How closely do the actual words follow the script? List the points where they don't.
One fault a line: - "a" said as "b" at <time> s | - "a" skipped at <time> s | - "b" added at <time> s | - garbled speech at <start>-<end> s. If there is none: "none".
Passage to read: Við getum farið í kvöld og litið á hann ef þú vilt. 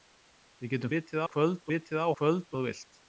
- "farið" said as "litið" at 0.9 s
- "og" skipped at 1.7 s
- "hann" said as "kvöld" at 2.2 s